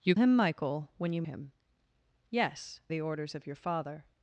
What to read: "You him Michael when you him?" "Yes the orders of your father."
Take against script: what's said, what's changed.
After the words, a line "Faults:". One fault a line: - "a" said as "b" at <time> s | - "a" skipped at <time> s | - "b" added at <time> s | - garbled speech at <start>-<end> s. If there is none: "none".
"You him Michael when you him?" "Yes the orders of your father."
Faults:
none